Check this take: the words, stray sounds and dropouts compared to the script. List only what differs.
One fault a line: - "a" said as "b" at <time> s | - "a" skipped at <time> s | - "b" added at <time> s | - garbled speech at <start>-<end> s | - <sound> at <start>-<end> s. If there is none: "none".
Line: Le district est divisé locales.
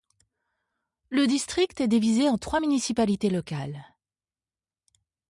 - "en trois municipalités" added at 2.3 s